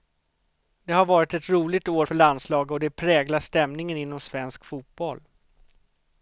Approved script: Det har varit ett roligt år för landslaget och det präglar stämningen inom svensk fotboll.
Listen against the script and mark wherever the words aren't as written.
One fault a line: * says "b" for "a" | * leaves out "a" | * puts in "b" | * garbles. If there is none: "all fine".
all fine